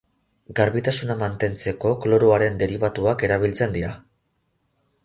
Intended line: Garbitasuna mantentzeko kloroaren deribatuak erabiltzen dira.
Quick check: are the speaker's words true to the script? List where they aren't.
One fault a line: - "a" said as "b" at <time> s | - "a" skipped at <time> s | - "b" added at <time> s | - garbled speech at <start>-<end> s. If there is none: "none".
none